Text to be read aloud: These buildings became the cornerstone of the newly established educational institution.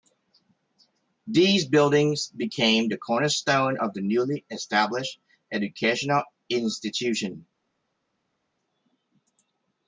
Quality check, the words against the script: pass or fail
pass